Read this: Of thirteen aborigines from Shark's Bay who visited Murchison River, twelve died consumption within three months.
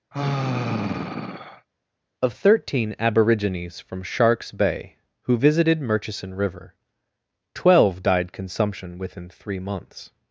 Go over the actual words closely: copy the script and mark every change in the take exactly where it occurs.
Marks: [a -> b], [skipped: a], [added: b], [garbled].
Of thirteen aborigines from Shark's Bay who visited Murchison River, twelve died consumption within three months.